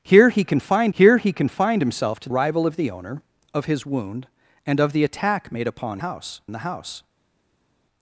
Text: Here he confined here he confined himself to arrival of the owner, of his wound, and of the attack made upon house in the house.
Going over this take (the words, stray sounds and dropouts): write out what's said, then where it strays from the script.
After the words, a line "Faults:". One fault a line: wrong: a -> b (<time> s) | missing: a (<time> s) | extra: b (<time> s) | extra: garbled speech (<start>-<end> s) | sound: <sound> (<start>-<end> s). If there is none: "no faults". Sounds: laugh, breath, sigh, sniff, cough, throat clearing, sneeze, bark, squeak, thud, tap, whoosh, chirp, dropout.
Here he confined here he confined himself to arrival of the owner, of his wound, and of the attack made upon house in the house.
Faults:
no faults